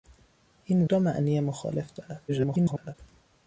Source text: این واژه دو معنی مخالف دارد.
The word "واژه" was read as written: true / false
false